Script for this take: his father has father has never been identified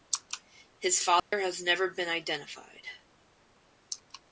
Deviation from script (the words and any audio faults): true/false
true